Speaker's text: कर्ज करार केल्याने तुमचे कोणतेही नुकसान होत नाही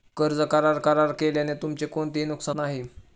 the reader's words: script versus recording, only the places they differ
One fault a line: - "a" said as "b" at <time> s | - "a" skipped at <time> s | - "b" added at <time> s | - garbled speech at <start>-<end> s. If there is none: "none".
- "करार" added at 0.8 s
- "होत" skipped at 2.6 s